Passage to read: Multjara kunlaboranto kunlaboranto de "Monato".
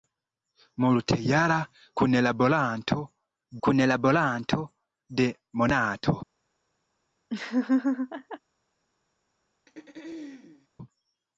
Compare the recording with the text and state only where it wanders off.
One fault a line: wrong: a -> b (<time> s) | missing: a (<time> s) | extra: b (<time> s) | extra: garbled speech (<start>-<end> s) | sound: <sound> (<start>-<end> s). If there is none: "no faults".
sound: laugh (7.3-8.4 s)
sound: throat clearing (9.7-10.7 s)